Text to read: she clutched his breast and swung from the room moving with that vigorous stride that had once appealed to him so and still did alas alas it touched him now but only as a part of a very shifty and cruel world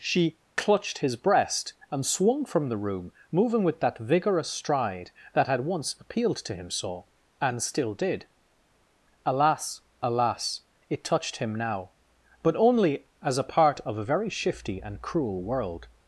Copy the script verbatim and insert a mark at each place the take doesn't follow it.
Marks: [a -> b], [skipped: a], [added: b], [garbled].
she clutched his breast and swung from the room moving with that vigorous stride that had once appealed to him so and still did alas alas it touched him now but only as a part of a very shifty and cruel world